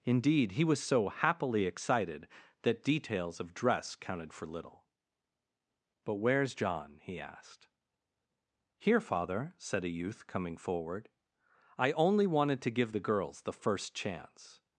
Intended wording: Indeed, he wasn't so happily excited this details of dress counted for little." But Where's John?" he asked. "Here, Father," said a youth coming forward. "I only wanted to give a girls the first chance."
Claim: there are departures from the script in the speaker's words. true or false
true